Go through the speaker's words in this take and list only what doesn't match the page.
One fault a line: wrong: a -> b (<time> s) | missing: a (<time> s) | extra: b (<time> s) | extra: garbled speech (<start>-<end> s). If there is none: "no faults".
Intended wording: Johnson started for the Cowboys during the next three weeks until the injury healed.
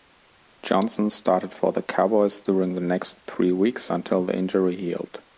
no faults